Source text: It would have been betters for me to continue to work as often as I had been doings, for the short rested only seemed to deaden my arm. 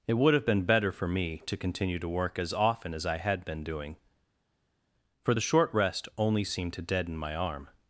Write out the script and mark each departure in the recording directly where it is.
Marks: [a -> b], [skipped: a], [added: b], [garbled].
It would have been [betters -> better] for me to continue to work as often as I had been [doings, -> doing] for the short [rested -> rest] only seemed to deaden my arm.